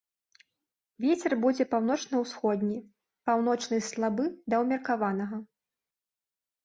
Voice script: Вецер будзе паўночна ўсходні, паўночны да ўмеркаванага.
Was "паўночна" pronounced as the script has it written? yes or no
yes